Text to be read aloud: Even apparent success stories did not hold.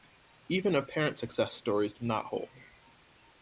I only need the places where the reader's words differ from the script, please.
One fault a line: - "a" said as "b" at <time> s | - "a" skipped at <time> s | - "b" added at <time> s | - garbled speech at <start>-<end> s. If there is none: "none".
none